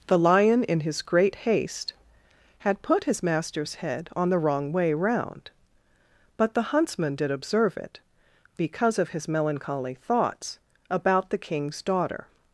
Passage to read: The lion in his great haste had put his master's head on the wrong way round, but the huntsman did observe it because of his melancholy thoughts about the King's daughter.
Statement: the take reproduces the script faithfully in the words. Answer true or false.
true